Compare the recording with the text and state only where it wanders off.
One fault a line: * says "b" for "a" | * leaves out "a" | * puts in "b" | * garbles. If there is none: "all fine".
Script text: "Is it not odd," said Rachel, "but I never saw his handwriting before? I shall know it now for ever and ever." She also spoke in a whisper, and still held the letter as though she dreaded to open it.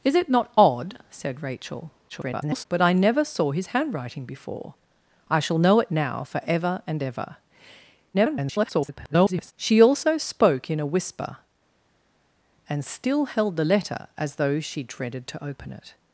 * garbles
* garbles